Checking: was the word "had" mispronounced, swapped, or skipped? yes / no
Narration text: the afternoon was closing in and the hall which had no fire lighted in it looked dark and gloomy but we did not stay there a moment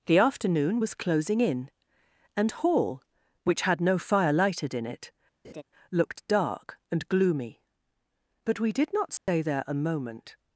no